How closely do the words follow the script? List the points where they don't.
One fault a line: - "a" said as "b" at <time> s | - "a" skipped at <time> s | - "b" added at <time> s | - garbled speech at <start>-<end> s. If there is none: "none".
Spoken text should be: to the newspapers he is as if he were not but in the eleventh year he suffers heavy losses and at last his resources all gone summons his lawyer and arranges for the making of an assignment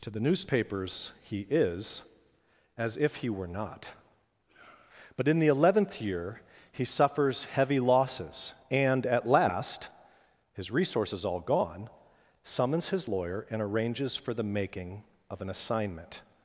none